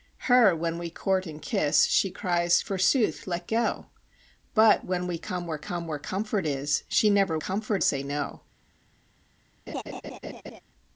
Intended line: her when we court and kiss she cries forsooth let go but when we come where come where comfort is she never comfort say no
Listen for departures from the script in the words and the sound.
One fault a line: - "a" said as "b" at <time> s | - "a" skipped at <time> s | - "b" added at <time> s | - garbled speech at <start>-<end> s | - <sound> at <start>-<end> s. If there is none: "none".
- laugh at 9.7-10.6 s